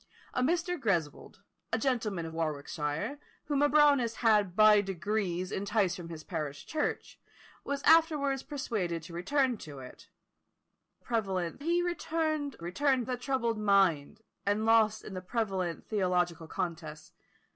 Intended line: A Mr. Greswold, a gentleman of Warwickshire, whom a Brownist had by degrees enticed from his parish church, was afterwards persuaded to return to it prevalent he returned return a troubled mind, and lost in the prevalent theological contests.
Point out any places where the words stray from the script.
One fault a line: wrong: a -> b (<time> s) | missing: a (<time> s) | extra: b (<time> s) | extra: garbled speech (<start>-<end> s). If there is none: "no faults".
no faults